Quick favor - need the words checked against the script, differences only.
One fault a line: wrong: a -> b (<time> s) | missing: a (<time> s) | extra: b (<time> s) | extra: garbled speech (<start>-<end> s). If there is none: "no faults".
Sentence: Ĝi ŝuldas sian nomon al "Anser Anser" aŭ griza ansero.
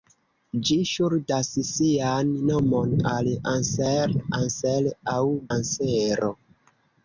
missing: griza (5.2 s)